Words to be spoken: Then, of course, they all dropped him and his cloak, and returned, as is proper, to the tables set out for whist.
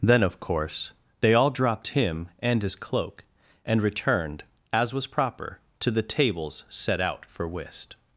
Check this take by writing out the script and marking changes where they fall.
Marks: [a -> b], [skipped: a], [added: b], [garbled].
Then, of course, they all dropped him and his cloak, and returned, as [is -> was] proper, to the tables set out for whist.